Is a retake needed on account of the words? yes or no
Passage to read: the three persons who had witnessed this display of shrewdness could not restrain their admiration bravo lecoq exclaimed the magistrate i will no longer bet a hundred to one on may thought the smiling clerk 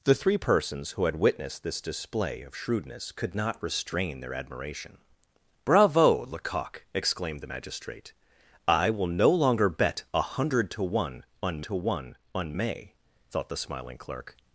yes